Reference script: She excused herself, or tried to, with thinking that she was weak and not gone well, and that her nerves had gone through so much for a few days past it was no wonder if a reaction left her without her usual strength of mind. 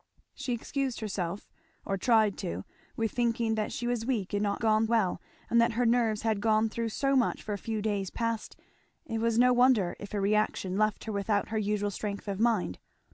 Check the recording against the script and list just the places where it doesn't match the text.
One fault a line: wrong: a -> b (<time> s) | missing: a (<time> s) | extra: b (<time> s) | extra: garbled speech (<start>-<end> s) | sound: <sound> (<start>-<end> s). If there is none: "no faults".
no faults